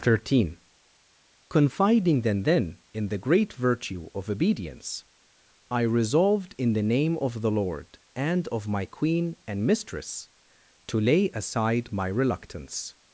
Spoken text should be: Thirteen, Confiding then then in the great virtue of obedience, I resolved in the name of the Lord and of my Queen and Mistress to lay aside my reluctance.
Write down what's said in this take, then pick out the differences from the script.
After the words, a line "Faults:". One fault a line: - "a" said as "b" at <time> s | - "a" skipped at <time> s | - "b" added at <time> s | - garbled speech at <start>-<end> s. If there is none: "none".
Thirteen, Confiding then then in the great virtue of obedience, I resolved in the name of the Lord and of my Queen and Mistress to lay aside my reluctance.
Faults:
none